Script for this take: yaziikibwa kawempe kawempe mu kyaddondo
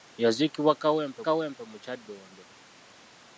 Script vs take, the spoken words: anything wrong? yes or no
no